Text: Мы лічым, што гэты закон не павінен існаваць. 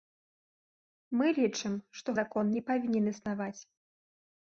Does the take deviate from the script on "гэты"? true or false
true